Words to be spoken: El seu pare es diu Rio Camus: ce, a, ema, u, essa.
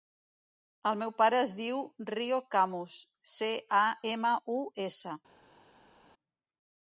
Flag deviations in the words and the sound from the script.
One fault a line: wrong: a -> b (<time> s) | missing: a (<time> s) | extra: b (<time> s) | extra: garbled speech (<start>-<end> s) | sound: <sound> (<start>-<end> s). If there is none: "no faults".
wrong: seu -> meu (1.0 s)